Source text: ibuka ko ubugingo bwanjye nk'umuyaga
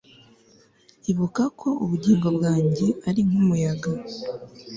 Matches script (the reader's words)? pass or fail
fail